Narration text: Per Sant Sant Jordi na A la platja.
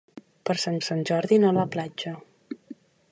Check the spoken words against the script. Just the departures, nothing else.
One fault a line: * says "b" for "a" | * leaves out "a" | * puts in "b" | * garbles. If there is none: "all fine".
all fine